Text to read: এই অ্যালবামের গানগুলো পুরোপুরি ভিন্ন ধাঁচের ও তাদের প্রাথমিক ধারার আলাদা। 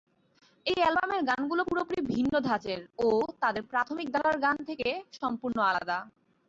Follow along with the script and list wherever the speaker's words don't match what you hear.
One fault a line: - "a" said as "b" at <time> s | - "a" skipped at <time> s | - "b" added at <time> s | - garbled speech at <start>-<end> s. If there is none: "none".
- "গান থেকে সম্পূর্ণ" added at 4.4 s